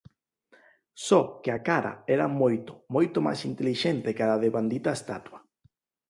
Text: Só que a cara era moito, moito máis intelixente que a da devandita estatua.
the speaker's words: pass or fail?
pass